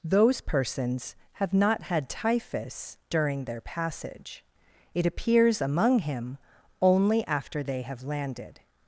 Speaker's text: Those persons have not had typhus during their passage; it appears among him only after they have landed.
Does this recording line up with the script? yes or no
yes